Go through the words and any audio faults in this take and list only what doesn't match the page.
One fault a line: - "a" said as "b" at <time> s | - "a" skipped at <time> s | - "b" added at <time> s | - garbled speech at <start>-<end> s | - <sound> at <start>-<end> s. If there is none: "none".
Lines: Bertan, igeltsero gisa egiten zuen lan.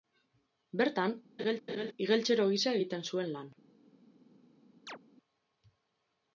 - laugh at 1.4-1.9 s
- chirp at 4.9-5.0 s